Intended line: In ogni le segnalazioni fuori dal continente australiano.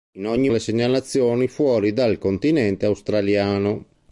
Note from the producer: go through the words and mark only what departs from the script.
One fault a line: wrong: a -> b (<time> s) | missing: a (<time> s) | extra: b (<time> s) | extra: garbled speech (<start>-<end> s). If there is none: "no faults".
no faults